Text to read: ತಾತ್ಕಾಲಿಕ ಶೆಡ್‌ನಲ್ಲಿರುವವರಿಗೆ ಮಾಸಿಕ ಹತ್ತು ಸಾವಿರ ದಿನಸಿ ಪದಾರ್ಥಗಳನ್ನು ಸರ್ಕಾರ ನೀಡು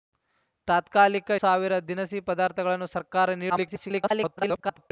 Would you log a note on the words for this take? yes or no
yes